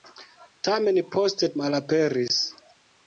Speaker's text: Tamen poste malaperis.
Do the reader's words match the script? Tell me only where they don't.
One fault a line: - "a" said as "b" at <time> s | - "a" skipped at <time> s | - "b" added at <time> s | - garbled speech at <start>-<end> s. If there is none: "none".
none